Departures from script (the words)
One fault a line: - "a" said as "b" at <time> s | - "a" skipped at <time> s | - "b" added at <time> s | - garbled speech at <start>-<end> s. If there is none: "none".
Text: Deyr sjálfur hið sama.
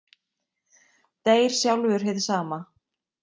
none